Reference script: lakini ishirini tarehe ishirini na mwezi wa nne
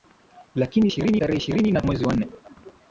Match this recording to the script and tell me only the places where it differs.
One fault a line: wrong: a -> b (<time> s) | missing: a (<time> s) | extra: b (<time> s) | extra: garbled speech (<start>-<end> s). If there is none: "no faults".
no faults